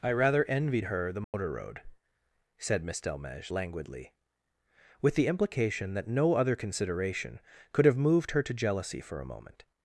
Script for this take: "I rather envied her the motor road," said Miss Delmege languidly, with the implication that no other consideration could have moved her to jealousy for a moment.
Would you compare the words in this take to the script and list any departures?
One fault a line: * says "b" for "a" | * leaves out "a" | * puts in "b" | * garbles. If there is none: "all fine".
all fine